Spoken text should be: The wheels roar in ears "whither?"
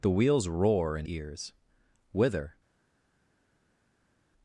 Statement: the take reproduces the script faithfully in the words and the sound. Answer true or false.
true